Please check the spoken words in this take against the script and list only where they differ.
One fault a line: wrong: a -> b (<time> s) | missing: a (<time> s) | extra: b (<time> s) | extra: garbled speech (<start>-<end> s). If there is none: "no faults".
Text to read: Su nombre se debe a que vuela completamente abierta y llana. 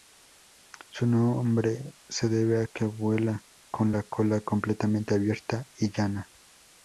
extra: con la cola (3.7 s)